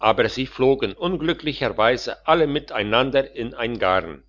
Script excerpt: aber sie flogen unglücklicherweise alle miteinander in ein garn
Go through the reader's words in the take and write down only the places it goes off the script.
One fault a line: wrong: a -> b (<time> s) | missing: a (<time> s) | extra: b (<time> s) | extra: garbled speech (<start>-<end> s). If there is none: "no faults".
no faults